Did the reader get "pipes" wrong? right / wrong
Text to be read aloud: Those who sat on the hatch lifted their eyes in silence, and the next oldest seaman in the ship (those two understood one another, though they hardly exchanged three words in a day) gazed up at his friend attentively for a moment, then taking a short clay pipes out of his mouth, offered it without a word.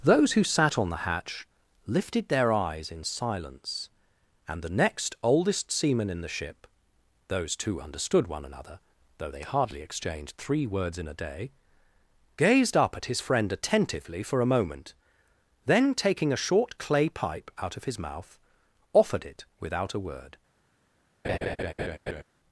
wrong